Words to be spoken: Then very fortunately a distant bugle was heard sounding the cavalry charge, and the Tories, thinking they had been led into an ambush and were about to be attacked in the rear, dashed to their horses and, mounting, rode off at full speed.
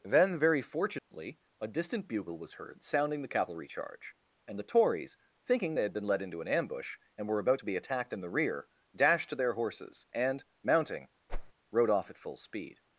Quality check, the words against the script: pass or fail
pass